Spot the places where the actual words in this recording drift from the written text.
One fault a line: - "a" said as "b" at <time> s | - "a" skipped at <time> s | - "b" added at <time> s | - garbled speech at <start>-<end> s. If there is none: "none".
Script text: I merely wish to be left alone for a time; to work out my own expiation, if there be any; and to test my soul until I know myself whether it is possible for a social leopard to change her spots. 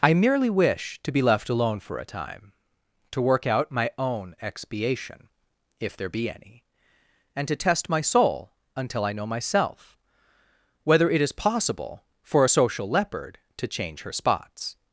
none